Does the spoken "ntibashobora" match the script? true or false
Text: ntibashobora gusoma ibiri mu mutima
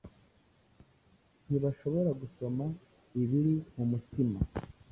true